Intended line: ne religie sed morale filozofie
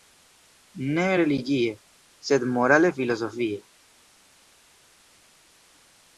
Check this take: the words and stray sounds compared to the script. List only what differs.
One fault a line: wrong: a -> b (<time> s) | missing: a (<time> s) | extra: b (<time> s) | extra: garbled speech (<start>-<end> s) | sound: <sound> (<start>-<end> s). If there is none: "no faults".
no faults